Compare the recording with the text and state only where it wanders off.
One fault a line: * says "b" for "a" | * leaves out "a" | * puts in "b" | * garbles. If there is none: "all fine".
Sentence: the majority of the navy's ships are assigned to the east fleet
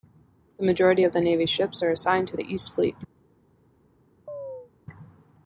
all fine